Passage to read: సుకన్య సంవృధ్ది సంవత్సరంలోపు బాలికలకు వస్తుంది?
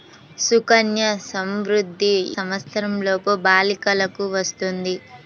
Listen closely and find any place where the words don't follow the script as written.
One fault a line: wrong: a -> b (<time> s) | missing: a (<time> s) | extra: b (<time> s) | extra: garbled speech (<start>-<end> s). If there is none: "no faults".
no faults